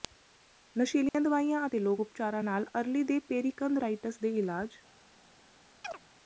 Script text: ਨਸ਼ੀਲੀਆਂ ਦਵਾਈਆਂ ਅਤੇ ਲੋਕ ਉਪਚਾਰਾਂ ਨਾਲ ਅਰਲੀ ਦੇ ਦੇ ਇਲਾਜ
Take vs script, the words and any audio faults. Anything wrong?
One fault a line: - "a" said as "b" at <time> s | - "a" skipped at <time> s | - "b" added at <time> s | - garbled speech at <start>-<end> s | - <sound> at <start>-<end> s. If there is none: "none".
- dropout at 1.1-1.1 s
- "ਪੇਰੀਕੰਧਰਾਇਟਸ" added at 3.2 s
- chirp at 5.8-6.0 s